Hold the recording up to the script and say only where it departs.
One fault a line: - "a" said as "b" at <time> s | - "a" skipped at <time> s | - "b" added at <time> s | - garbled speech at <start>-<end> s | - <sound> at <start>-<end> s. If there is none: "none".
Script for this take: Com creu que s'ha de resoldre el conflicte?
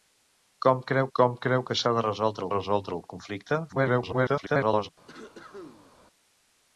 - "com creu" added at 1.2 s
- "resoldre" added at 2.5 s
- garbled speech at 3.7-4.9 s
- cough at 5.1-6.0 s